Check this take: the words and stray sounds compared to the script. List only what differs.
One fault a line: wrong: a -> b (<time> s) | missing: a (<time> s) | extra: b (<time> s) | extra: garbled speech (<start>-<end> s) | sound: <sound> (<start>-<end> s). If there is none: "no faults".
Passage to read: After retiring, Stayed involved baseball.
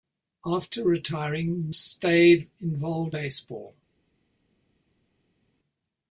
no faults